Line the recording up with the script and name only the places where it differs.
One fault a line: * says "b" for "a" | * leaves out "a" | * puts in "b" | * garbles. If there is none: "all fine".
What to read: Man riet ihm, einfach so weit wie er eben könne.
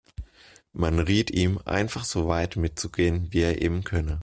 * puts in "mitzugehen"